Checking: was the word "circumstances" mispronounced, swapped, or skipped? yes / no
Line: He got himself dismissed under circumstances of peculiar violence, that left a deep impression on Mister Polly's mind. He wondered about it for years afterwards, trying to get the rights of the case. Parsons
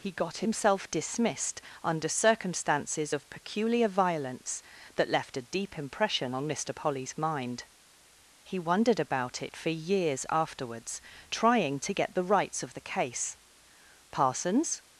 no